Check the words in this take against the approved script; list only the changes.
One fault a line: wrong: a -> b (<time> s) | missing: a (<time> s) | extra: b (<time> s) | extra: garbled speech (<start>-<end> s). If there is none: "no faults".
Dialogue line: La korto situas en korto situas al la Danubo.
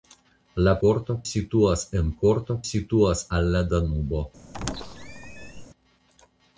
no faults